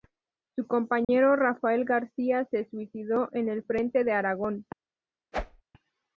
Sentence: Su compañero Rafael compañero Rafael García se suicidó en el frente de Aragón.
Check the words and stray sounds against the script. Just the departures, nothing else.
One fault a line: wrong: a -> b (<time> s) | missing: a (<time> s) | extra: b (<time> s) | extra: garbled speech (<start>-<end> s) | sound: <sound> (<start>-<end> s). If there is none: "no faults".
sound: dropout (1.0-1.1 s)
missing: compañero Rafael (1.9 s)
sound: whoosh (5.3-5.6 s)